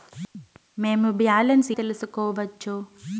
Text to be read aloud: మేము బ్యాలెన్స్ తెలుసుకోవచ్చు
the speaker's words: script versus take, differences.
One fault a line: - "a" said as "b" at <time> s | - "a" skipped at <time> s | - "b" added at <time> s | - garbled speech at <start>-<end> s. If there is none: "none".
none